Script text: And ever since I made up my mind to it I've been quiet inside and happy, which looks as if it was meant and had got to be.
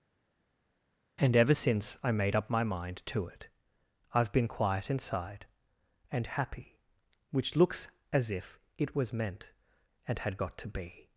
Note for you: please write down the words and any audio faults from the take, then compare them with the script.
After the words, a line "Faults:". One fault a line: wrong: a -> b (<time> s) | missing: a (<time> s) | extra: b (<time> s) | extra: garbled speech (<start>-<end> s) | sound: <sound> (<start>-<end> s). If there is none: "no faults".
And ever since I made up my mind to it I've been quiet inside and happy, which looks as if it was meant and had got to be.
Faults:
no faults